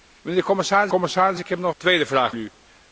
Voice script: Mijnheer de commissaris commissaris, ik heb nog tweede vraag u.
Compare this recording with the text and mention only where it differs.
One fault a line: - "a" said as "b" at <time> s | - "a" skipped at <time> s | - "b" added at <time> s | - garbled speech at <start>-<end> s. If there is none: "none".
none